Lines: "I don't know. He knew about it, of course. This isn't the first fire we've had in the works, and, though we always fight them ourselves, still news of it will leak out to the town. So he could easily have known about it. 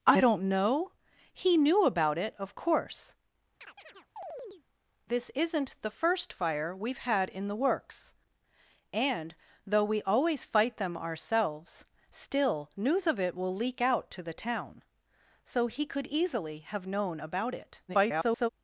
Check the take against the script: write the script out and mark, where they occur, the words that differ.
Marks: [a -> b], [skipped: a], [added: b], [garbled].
"I don't know. He knew about it, of course. This isn't the first fire we've had in the works, and, though we always fight them ourselves, still news of it will leak out to the town. So he could easily have known about it. [garbled]